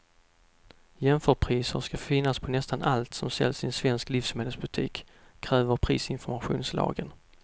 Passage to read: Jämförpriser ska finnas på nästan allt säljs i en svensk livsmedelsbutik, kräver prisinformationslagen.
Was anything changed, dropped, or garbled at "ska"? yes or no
no